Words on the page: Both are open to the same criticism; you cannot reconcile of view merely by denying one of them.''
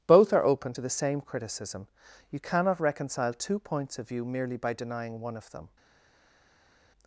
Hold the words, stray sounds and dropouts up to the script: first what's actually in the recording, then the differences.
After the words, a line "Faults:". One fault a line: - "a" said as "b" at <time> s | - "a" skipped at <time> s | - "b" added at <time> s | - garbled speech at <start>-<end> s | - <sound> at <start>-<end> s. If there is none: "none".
Both are open to the same criticism; you cannot reconcile two points of view merely by denying one of them.''
Faults:
- "two points" added at 3.3 s